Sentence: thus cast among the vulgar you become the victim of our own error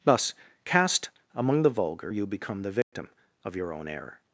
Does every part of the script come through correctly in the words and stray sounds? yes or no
no